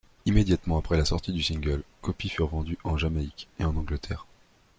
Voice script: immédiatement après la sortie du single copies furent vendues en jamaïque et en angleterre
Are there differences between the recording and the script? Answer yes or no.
no